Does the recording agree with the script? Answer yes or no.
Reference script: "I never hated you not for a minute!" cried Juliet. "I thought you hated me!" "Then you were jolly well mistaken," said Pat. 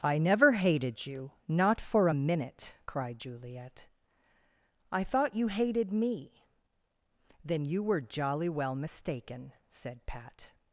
yes